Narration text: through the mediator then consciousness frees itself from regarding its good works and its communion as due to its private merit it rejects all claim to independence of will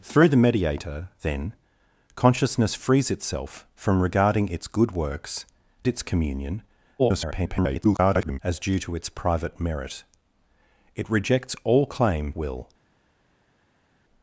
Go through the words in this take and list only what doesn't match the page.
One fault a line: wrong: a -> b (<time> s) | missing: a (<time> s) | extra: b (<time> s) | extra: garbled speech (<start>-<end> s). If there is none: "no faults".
missing: and (5.5 s)
extra: garbled speech (7.0-8.4 s)
missing: to independence of (12.3 s)